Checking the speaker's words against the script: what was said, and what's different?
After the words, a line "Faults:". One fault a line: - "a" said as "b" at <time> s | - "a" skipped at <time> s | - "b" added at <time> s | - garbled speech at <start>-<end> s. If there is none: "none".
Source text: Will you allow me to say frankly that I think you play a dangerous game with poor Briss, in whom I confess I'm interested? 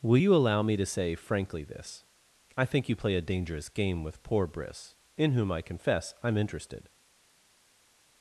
Will you allow me to say frankly this I think you play a dangerous game with poor Briss, in whom I confess I'm interested?
Faults:
- "that" said as "this" at 1.6 s